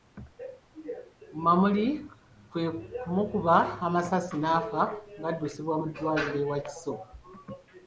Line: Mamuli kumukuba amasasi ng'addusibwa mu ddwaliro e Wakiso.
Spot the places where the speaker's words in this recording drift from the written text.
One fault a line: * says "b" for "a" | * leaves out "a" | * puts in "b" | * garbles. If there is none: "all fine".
* puts in "kwe"
* puts in "n'afa"